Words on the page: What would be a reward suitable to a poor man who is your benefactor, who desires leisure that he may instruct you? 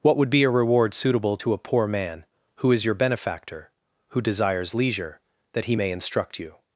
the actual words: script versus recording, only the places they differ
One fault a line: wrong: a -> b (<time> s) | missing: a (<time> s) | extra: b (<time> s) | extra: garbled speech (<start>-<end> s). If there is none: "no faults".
no faults